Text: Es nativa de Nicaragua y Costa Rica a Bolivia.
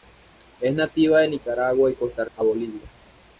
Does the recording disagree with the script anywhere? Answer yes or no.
yes